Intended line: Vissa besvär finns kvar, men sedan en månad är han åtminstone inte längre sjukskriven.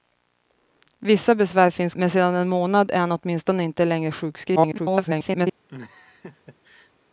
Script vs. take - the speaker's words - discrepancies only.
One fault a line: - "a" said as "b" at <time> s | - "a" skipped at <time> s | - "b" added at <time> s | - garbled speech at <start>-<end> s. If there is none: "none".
- "kvar" skipped at 1.9 s
- garbled speech at 4.6-5.5 s